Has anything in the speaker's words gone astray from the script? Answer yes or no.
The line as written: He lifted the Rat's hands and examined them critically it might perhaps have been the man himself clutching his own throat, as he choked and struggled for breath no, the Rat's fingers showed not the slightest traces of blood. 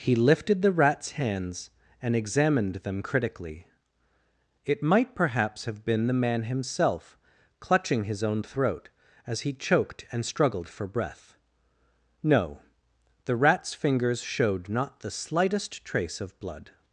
yes